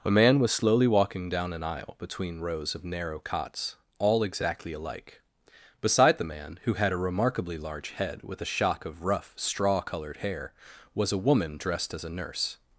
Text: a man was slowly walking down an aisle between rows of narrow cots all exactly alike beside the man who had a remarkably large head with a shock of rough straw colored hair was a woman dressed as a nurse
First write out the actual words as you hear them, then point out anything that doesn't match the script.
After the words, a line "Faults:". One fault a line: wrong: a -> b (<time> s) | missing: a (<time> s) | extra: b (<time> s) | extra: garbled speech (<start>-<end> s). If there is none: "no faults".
a man was slowly walking down an aisle between rows of narrow cots all exactly alike beside the man who had a remarkably large head with a shock of rough straw colored hair was a woman dressed as a nurse
Faults:
no faults